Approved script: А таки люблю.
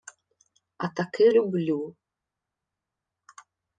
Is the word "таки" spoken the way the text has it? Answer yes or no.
yes